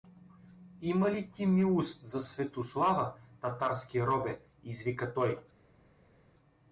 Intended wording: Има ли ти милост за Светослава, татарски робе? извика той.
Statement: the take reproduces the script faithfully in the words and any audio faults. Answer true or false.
true